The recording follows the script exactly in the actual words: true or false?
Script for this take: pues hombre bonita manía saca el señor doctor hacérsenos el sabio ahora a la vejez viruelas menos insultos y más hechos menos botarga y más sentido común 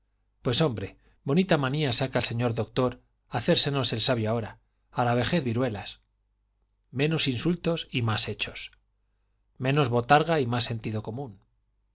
true